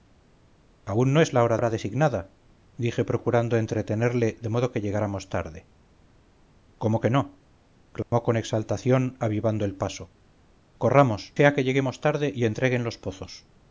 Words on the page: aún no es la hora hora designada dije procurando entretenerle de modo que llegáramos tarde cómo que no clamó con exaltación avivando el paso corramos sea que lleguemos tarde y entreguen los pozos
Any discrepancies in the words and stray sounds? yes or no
yes